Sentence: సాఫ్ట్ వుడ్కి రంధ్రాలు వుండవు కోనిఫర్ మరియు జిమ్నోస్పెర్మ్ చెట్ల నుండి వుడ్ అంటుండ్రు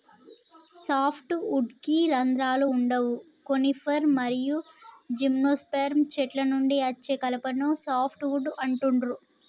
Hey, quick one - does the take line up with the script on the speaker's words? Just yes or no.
no